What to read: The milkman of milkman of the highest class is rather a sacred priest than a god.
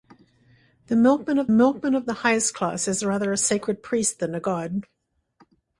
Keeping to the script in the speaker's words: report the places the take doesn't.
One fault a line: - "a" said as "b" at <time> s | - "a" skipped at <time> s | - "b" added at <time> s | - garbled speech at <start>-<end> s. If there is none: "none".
none